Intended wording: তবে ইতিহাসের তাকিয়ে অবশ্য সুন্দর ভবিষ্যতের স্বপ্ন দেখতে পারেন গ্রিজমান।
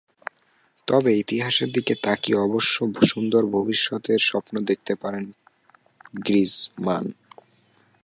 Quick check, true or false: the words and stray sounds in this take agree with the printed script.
false